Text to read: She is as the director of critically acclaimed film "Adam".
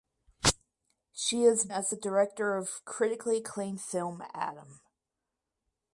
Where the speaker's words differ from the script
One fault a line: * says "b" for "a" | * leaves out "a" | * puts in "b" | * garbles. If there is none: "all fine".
all fine